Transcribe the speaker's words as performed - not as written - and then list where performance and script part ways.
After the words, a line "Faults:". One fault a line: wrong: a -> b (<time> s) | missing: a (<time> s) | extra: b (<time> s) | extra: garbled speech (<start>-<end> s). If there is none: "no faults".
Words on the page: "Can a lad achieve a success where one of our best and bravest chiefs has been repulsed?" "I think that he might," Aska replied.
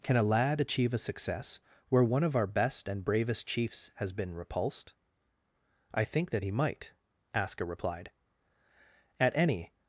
"Can a lad achieve a success where one of our best and bravest chiefs has been repulsed?" "I think that he might," Aska replied. "At any
Faults:
extra: At any (9.2 s)